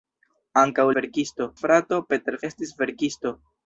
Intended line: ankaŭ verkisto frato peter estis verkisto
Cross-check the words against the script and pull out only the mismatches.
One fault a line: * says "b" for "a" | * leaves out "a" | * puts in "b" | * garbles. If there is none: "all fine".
all fine